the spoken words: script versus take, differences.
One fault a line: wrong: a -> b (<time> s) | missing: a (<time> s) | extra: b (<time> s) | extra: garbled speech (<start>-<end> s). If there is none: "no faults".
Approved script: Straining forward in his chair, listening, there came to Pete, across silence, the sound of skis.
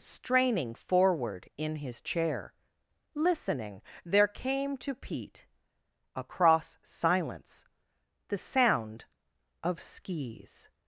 no faults